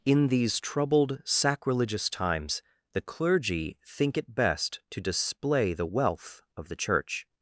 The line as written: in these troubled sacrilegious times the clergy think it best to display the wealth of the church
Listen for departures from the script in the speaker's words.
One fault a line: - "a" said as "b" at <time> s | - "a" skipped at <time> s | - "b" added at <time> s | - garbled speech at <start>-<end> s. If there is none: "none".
none